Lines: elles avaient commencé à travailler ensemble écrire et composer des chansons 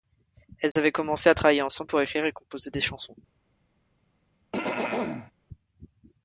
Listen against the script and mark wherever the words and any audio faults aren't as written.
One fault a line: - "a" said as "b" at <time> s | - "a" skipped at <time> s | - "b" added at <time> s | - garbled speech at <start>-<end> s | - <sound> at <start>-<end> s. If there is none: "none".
- dropout at 0.7-0.8 s
- "pour" added at 1.9 s
- throat clearing at 4.5-5.3 s